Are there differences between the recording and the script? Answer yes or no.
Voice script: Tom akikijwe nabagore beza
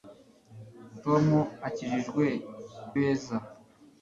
yes